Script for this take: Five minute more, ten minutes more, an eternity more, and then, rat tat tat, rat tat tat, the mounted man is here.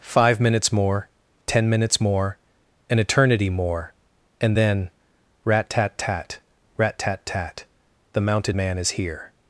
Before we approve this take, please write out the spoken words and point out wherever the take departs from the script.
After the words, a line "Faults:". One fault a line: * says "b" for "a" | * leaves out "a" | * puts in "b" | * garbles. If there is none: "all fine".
Five minutes more, ten minutes more, an eternity more, and then, rat tat tat, rat tat tat, the mounted man is here.
Faults:
* says "minutes" for "minute"